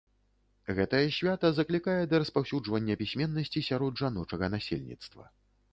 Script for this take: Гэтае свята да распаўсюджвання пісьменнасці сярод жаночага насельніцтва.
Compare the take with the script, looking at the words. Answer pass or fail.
fail